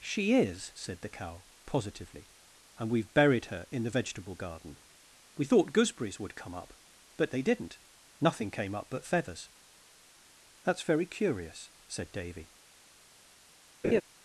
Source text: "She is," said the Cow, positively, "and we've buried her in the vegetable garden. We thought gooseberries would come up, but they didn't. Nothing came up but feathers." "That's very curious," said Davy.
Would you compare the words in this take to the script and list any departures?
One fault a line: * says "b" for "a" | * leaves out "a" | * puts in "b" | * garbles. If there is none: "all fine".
all fine